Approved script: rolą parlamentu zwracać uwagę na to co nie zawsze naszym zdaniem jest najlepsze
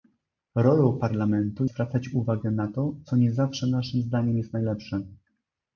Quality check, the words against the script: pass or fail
pass